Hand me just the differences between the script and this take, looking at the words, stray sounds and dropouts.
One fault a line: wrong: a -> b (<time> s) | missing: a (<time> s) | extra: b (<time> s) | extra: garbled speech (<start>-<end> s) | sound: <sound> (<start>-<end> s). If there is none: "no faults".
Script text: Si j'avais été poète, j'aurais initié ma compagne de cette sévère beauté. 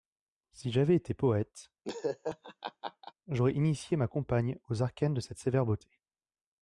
sound: laugh (1.8-3.1 s)
extra: aux arcanes (4.7 s)